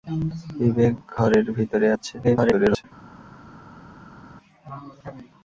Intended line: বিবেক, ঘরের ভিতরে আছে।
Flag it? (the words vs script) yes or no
yes